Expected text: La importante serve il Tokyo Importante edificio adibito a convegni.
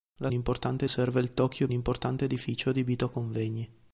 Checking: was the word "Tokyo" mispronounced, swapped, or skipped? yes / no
no